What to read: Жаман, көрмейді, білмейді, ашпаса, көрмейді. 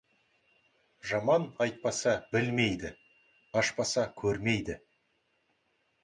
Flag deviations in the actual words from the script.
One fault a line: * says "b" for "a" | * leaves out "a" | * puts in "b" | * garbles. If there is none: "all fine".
* says "айтпаса" for "көрмейді"